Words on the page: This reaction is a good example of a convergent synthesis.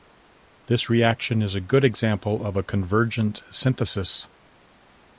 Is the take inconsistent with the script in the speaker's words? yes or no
no